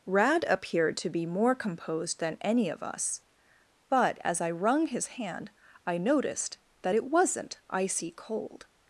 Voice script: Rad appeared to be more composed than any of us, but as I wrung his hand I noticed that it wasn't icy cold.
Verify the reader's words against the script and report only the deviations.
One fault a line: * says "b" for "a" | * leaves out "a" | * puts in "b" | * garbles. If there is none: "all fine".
all fine